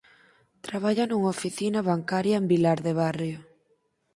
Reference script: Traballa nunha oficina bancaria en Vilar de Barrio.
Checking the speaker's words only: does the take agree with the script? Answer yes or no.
yes